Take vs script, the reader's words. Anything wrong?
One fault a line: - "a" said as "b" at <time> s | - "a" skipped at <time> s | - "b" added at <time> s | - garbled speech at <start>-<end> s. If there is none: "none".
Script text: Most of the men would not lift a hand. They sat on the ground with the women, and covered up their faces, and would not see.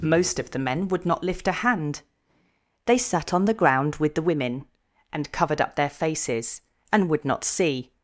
none